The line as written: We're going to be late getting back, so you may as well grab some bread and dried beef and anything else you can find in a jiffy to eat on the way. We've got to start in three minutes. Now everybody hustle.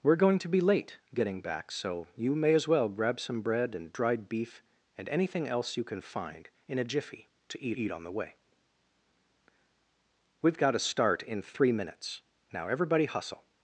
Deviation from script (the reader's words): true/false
true